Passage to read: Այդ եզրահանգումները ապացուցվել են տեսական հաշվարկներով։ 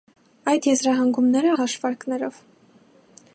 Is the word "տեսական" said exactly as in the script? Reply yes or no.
no